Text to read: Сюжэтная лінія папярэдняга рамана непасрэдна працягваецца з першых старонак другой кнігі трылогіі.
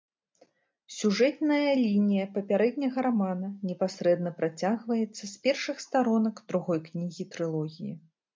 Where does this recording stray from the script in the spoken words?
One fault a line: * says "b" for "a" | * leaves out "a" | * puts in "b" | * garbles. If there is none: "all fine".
all fine